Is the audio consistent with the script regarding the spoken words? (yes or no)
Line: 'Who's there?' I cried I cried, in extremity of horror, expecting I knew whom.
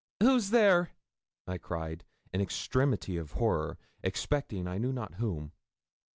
no